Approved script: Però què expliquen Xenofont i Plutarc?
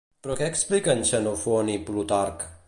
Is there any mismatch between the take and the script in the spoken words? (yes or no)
no